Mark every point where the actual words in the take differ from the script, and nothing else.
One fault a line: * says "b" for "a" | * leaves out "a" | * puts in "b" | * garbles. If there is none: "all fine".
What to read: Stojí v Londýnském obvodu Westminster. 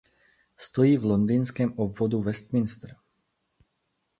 all fine